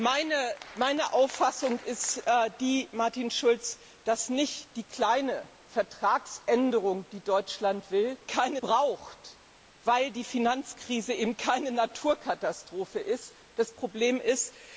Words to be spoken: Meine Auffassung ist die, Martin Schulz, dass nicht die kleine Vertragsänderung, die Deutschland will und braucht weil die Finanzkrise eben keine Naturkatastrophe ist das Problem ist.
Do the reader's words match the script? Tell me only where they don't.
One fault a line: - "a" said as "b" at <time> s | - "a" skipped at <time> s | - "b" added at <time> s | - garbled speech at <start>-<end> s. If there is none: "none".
- "und" said as "keine" at 8.2 s